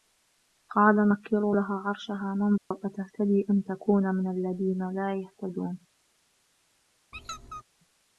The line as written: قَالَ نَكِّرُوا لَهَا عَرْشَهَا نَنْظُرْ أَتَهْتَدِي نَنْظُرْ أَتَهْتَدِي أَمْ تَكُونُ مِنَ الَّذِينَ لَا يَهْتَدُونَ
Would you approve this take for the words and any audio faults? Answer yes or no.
no